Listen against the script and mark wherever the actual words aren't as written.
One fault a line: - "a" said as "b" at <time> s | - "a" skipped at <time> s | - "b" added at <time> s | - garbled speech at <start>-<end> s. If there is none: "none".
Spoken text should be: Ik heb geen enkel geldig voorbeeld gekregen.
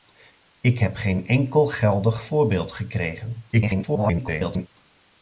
- garbled speech at 3.5-4.7 s